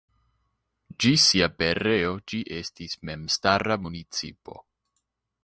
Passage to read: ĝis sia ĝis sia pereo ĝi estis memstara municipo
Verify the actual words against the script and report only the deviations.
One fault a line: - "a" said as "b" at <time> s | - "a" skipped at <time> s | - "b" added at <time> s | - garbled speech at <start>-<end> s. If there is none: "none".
- "ĝis sia" skipped at 1.5 s